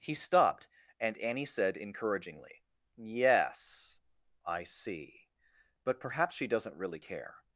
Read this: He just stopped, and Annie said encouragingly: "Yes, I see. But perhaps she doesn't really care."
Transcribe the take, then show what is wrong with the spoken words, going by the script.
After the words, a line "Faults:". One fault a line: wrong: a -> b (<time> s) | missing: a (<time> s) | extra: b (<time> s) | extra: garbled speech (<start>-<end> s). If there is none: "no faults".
He stopped, and Annie said encouragingly: "Yes, I see. But perhaps she doesn't really care."
Faults:
missing: just (0.1 s)